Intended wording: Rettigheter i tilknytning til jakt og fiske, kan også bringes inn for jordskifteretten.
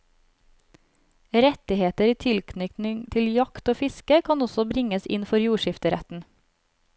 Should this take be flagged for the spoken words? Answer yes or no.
no